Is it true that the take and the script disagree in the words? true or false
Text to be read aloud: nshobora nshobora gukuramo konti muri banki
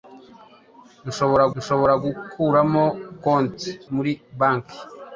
false